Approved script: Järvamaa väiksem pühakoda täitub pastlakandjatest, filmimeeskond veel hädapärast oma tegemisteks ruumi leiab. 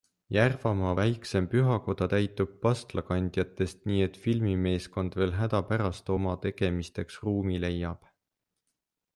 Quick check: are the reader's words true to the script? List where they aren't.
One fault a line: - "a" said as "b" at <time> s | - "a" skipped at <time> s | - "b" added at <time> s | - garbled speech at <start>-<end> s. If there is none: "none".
- "nii et" added at 3.9 s